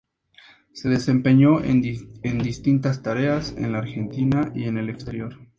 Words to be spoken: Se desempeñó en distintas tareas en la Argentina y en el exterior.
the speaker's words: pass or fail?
pass